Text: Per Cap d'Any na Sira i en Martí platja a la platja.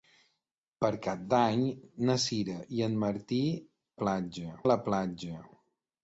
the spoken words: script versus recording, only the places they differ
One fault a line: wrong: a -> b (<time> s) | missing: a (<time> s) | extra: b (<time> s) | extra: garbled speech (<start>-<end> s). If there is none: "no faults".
no faults